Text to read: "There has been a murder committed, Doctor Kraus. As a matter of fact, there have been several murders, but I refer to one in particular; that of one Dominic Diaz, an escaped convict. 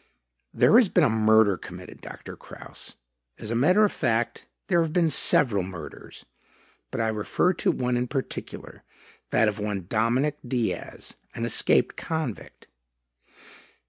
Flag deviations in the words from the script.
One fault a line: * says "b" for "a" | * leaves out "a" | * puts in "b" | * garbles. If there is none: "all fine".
all fine